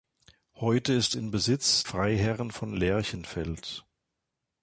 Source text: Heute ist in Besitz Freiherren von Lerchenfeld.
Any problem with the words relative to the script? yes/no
no